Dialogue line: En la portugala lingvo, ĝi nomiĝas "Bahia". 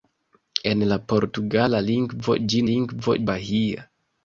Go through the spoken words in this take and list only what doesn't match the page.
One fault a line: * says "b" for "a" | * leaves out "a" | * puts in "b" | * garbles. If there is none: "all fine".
* says "lingvo" for "nomiĝas"